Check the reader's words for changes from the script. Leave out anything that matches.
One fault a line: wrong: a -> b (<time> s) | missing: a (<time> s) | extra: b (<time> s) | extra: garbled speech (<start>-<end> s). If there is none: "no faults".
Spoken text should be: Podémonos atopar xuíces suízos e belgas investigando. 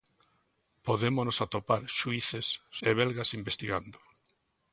missing: suízos (2.5 s)